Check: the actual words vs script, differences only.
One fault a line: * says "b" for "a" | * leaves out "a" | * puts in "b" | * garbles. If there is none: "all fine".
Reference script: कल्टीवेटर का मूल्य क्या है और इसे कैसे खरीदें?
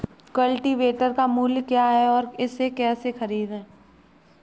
all fine